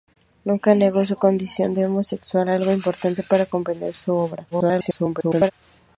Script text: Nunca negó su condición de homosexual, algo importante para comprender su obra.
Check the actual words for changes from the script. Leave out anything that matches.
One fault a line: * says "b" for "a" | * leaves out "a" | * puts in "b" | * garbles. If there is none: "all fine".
* garbles